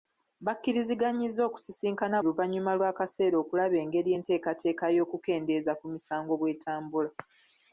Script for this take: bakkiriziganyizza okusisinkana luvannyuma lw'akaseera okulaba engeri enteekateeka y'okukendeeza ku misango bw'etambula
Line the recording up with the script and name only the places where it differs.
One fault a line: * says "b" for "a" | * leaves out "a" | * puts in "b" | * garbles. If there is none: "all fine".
all fine